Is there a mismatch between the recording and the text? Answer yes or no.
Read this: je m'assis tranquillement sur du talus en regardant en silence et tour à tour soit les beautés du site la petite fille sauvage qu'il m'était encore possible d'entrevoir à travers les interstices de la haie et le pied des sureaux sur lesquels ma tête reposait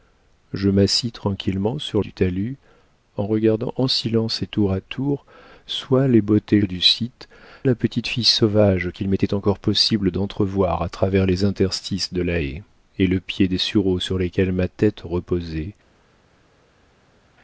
no